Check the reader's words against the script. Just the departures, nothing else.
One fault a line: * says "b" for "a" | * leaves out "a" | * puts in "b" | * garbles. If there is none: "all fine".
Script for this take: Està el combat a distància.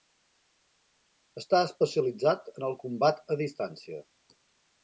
* puts in "especialitzat en"